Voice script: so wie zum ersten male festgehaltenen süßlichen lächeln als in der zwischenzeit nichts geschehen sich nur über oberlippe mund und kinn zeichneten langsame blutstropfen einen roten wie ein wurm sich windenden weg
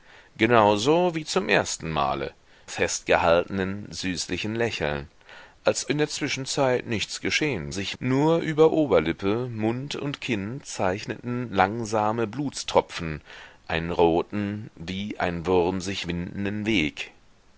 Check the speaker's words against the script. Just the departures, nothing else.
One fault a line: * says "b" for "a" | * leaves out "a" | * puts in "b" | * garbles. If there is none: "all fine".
all fine